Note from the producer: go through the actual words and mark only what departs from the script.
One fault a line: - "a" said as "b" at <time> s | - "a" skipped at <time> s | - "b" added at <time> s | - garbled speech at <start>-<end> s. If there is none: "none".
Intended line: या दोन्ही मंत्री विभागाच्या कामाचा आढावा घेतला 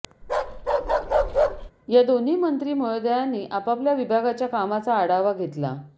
- "महोदयांनी आपापल्या" added at 2.7 s